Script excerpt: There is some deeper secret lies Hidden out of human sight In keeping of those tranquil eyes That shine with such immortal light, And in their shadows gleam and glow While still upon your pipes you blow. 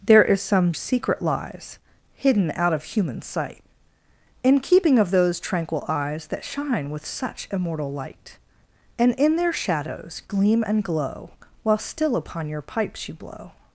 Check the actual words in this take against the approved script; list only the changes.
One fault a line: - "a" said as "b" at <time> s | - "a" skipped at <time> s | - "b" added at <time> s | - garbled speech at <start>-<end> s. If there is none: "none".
- "deeper" skipped at 0.7 s